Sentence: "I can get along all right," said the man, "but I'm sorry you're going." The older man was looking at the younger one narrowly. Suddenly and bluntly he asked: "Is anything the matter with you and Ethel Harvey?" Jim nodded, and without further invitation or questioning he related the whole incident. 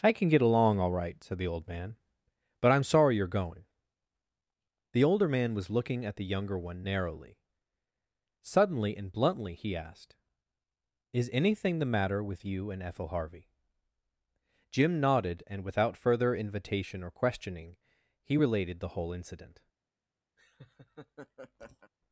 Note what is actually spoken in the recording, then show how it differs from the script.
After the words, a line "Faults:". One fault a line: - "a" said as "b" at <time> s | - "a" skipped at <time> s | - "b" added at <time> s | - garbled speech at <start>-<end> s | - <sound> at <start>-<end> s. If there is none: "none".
"I can get along all right," said the old man, "but I'm sorry you're going." The older man was looking at the younger one narrowly. Suddenly and bluntly he asked: "Is anything the matter with you and Ethel Harvey?" Jim nodded, and without further invitation or questioning he related the whole incident.
Faults:
- "old" added at 1.5 s
- laugh at 20.4-21.9 s